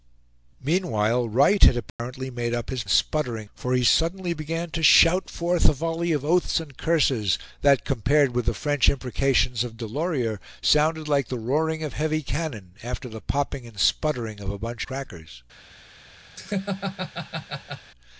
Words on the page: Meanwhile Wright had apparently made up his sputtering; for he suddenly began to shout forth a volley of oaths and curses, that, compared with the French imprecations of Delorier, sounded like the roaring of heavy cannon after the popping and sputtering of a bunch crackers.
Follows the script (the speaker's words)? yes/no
yes